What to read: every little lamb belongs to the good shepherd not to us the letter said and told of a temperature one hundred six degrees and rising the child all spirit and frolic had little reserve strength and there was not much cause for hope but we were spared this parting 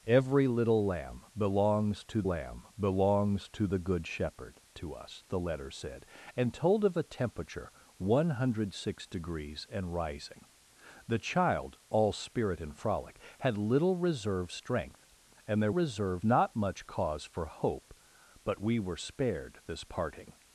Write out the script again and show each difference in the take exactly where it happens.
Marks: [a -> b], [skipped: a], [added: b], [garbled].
every little lamb belongs to [added: lamb belongs to] the good shepherd [skipped: not] to us the letter said and told of a temperature one hundred six degrees and rising the child all spirit and frolic had little reserve strength and there [was -> reserve] not much cause for hope but we were spared this parting